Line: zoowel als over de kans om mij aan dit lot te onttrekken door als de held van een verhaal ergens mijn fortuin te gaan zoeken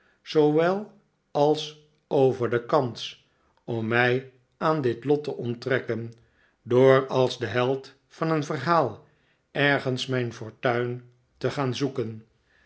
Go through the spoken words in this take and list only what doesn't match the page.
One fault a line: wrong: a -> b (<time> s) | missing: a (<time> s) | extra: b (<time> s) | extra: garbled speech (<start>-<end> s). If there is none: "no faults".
no faults